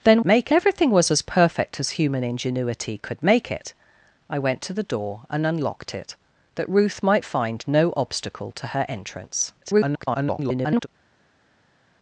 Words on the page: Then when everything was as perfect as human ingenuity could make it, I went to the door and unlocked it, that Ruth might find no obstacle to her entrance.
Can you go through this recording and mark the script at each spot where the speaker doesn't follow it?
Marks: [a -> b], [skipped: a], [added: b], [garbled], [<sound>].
Then [when -> make] everything was as perfect as human ingenuity could make it, I went to the door and unlocked it, that Ruth might find no obstacle to her entrance. [garbled]